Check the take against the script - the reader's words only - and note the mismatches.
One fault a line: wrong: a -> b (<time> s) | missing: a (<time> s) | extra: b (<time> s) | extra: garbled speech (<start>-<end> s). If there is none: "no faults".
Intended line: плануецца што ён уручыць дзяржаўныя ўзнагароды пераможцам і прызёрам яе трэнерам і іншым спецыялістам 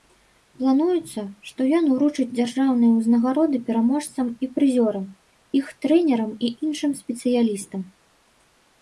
wrong: яе -> іх (5.6 s)